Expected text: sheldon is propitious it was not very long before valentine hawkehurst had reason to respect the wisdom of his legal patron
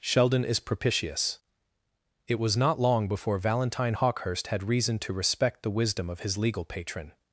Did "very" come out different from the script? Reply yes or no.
yes